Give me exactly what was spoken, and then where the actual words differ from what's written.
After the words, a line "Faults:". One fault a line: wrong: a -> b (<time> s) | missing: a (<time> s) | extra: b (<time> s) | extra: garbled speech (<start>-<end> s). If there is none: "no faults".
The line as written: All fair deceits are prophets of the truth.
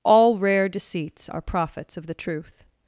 All rare deceits are prophets of the truth.
Faults:
wrong: fair -> rare (0.4 s)